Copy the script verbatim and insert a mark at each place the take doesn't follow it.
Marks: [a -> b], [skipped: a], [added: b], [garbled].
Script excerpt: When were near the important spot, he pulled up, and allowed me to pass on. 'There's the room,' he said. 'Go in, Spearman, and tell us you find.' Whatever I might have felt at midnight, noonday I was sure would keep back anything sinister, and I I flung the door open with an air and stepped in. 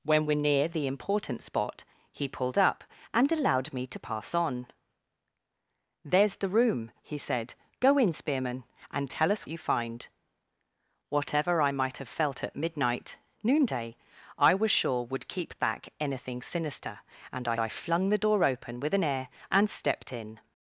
When were near the important spot, he pulled up, and allowed me to pass on. 'There's the room,' he said. 'Go in, Spearman, and tell us you find.' Whatever I might have felt at midnight, noonday I was sure would keep back anything sinister, and I I flung the door open with an air and stepped in.